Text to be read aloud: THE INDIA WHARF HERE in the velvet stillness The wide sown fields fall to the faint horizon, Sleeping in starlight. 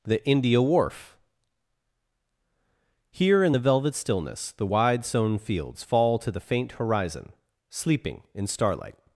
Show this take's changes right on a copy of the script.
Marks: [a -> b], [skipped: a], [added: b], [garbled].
THE INDIA WHARF HERE in the velvet stillness The wide sown fields fall to the faint horizon, Sleeping in starlight.